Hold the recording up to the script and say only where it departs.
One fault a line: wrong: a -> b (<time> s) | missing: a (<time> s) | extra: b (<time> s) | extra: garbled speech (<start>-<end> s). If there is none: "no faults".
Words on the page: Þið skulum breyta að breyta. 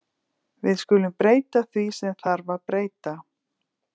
wrong: Þið -> Við (0.7 s)
extra: því sem þarf (1.7 s)